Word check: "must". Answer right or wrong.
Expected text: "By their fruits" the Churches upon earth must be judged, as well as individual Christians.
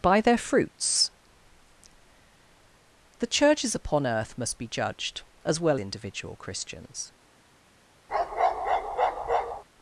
right